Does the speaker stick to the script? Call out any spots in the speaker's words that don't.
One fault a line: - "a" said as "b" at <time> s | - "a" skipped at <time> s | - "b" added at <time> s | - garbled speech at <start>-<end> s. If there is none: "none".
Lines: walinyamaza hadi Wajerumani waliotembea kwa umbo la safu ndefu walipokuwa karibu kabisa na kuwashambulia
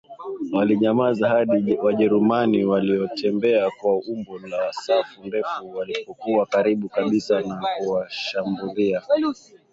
none